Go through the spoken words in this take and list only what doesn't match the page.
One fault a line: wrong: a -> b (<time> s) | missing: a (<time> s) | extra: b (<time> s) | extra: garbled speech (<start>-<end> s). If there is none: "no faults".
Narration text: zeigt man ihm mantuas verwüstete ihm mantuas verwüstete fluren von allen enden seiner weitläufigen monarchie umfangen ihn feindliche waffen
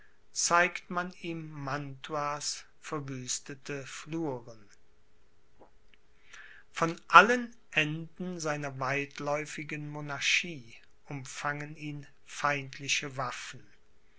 missing: ihm mantuas verwüstete (3.9 s)